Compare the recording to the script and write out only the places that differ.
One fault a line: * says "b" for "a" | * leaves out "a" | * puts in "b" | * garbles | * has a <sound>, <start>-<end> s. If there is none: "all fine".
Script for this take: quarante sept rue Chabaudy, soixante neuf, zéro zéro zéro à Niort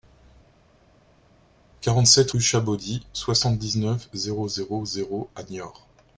* puts in "dix"